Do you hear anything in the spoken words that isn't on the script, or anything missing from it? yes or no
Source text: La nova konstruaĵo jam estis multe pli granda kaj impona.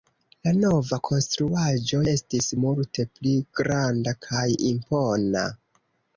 yes